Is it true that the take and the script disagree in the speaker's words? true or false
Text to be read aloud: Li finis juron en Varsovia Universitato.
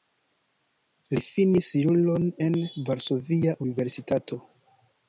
false